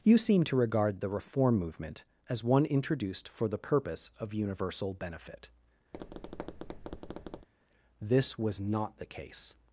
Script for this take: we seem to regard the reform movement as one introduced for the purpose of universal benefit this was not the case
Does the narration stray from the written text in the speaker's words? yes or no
yes